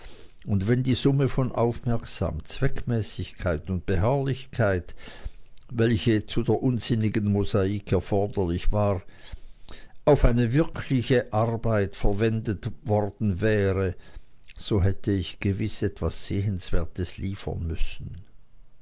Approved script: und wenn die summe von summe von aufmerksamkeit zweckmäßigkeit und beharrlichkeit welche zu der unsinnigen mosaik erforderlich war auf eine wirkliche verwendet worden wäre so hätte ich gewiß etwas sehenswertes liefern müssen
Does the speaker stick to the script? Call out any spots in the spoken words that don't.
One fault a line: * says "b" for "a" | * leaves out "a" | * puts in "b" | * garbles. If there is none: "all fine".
* leaves out "summe von"
* puts in "arbeit"